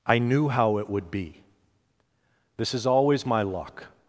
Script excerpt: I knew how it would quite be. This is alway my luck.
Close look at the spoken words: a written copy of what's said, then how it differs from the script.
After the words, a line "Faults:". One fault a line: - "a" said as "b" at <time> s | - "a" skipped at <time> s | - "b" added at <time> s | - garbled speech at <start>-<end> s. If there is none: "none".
I knew how it would be. This is always my luck.
Faults:
- "quite" skipped at 1.1 s
- "alway" said as "always" at 2.9 s